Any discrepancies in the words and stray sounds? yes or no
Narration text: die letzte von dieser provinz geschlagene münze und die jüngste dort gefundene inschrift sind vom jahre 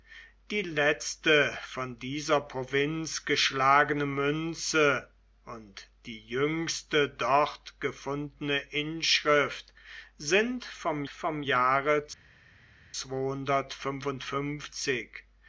yes